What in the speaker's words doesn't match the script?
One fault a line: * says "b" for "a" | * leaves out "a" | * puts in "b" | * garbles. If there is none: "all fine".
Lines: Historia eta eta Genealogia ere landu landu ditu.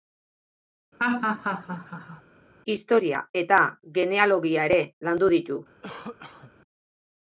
* leaves out "eta"
* leaves out "landu"